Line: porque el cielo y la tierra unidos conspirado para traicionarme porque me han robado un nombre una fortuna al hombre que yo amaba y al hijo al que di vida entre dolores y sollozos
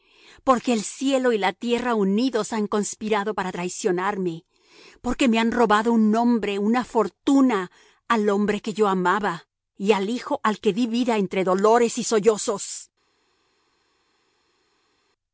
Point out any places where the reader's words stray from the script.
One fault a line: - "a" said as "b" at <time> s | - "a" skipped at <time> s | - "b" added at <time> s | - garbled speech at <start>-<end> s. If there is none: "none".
- "han" added at 2.5 s